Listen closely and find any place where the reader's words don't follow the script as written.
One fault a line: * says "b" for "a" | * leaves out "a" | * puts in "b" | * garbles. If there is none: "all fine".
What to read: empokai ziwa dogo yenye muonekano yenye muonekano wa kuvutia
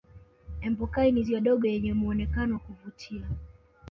* puts in "ni"
* leaves out "yenye muonekano"